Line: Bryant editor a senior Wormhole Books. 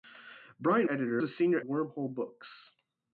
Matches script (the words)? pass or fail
pass